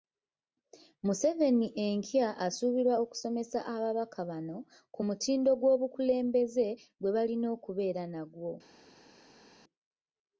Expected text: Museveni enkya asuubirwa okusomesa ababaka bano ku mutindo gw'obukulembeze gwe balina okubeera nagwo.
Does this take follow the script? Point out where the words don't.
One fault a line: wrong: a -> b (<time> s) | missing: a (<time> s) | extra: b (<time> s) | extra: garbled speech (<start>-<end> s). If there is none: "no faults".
no faults